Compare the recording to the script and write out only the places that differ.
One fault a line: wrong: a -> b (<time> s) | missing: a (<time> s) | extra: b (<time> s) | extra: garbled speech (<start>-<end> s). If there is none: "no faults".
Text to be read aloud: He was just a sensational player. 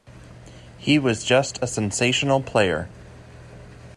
no faults